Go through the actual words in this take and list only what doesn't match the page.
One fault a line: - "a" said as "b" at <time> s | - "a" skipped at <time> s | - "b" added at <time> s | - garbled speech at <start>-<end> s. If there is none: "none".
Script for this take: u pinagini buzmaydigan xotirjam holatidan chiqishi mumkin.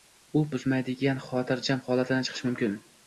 - "pinagini" skipped at 0.4 s